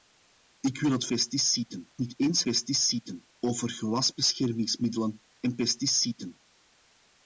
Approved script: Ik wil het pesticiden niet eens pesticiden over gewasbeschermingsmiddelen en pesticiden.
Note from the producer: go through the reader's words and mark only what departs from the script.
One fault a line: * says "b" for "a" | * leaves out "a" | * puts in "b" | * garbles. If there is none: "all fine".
all fine